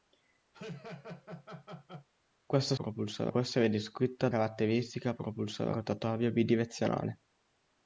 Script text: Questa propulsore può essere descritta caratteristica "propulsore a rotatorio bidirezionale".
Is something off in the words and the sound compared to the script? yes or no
yes